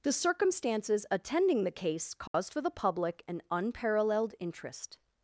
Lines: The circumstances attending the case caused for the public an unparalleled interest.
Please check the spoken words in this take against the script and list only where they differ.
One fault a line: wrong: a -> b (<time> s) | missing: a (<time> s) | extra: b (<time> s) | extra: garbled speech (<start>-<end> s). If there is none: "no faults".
no faults